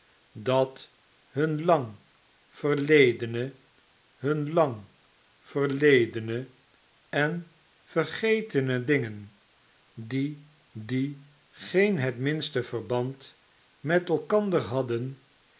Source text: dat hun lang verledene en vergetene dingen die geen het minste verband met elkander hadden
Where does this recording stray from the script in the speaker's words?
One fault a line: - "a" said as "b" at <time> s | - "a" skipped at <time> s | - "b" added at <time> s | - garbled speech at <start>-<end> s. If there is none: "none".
- "hun lang verledene" added at 4.1 s
- "die" added at 10.7 s